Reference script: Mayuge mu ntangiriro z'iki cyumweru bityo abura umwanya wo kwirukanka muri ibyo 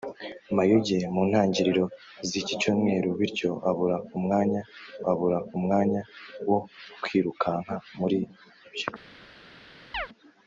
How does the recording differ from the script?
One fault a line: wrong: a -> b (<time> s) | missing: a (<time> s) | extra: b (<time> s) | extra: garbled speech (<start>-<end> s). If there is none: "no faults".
extra: abura umwanya (5.1 s)